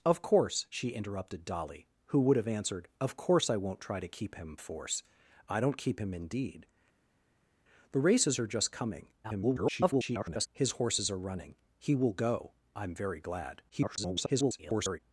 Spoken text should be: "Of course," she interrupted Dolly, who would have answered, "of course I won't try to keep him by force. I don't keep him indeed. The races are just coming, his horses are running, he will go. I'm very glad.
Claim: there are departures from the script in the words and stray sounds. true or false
true